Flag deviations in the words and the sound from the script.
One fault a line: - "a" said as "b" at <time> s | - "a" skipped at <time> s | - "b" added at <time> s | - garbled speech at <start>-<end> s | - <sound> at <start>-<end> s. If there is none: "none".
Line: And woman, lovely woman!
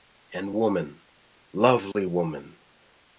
- dropout at 1.9-2.0 s